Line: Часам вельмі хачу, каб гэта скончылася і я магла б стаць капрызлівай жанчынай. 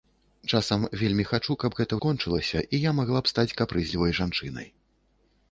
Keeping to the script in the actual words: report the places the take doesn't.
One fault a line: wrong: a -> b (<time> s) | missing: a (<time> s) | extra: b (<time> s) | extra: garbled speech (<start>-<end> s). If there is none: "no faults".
no faults